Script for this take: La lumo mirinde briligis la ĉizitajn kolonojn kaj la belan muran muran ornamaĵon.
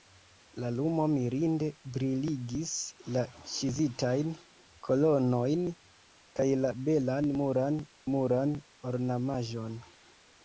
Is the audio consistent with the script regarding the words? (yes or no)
yes